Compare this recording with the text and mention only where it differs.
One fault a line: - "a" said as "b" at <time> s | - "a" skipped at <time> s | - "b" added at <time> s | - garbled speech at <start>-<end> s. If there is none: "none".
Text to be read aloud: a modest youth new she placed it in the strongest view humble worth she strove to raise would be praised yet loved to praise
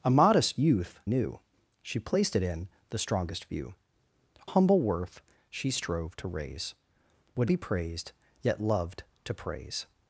none